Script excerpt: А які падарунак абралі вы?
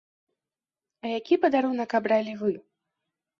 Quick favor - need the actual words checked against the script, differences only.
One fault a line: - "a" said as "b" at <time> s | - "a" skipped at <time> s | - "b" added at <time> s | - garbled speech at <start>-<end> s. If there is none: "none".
none